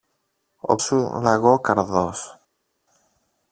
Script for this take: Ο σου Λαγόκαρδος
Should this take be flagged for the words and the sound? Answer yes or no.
no